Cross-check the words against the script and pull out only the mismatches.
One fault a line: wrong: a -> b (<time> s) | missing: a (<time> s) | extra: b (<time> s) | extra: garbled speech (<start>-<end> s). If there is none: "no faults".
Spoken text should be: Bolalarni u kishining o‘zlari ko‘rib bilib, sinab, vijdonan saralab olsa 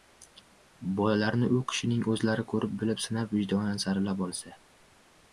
no faults